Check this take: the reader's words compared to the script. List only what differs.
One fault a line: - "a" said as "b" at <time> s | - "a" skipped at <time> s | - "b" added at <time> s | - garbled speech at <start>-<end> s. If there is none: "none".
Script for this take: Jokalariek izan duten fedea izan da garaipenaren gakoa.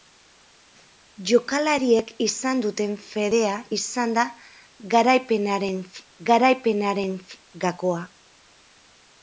- "garaipenaren" added at 6.3 s